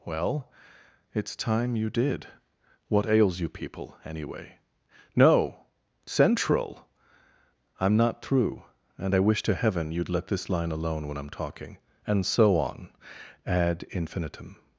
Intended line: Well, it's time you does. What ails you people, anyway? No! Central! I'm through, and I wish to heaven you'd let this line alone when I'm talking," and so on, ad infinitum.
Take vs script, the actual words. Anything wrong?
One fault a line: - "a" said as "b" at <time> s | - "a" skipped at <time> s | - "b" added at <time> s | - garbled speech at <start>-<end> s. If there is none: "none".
- "does" said as "did" at 1.9 s
- "not" added at 8.0 s